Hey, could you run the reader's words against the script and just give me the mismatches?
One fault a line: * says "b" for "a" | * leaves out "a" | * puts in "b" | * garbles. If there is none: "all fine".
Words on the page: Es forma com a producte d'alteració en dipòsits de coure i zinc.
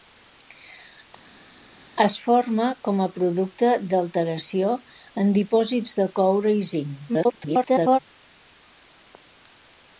* garbles